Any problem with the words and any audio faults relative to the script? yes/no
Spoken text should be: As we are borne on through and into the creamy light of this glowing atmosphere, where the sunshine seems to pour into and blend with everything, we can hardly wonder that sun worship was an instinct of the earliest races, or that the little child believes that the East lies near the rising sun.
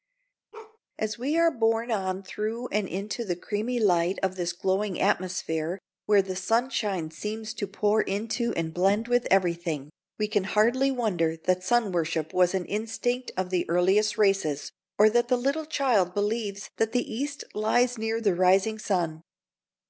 yes